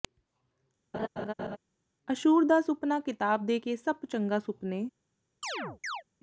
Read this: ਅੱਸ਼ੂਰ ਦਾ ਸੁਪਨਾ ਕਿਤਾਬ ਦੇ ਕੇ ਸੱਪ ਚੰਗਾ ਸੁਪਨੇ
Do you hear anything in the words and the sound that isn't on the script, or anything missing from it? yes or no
yes